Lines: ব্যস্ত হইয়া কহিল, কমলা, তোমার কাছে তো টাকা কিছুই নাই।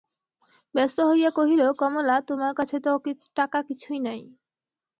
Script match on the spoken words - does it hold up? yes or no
yes